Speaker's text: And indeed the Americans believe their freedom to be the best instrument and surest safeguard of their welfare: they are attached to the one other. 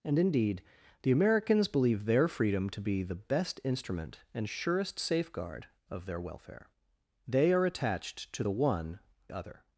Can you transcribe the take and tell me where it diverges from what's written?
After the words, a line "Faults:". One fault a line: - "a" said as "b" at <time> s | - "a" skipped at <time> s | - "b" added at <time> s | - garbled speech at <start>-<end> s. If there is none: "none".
And indeed the Americans believe their freedom to be the best instrument and surest safeguard of their welfare: they are attached to the one other.
Faults:
none